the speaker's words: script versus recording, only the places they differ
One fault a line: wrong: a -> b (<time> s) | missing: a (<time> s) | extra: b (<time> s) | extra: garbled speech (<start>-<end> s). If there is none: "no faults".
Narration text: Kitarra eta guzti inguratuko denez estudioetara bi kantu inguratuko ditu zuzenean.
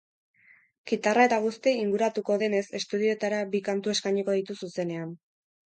wrong: inguratuko -> eskainiko (4.0 s)